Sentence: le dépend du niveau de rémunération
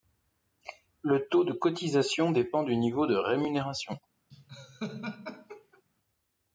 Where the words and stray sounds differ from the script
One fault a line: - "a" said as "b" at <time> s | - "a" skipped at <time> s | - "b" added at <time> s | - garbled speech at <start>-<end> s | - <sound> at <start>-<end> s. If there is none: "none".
- "taux de cotisation" added at 1.3 s
- laugh at 4.3-5.8 s